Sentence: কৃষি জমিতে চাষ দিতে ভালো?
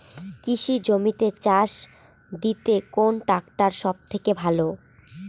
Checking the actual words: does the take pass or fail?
fail